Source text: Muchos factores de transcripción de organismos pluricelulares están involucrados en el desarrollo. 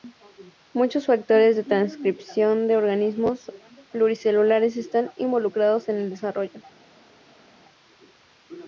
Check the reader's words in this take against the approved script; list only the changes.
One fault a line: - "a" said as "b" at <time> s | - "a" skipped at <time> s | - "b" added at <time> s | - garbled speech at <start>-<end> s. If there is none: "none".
none